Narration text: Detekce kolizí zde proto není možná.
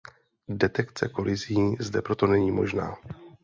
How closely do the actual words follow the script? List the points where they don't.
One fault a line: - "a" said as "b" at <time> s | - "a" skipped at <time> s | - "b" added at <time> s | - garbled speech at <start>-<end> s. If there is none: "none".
none